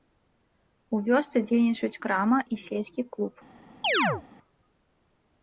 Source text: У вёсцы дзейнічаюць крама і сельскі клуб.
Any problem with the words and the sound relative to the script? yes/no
yes